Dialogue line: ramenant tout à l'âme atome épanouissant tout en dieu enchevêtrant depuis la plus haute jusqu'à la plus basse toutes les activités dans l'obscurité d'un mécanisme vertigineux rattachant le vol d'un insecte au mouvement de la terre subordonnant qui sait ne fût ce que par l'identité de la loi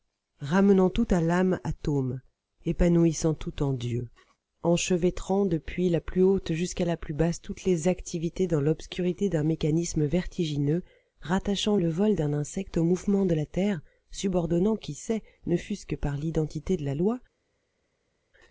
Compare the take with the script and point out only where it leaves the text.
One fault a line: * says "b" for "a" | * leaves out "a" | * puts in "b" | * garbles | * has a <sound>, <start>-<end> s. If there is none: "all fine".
all fine